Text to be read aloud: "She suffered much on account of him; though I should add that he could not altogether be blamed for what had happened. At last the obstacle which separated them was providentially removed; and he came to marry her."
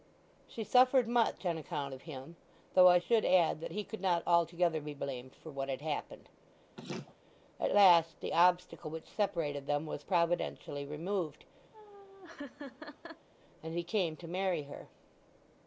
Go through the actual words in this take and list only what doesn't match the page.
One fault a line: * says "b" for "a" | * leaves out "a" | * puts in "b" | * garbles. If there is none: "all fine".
all fine